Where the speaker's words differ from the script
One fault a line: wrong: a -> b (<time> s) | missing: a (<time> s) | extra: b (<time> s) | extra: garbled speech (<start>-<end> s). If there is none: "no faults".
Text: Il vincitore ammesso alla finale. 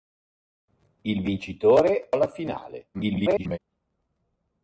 missing: ammesso (2.1 s)
extra: garbled speech (2.9-3.6 s)